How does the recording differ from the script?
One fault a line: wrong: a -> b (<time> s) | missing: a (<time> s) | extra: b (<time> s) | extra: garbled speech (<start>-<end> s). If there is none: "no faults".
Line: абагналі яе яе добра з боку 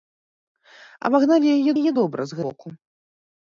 no faults